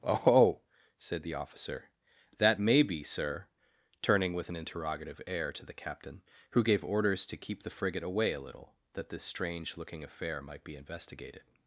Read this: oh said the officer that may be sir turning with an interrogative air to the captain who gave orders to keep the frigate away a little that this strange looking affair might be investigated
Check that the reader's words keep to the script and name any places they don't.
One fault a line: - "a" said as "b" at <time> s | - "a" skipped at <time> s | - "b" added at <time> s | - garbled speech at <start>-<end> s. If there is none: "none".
none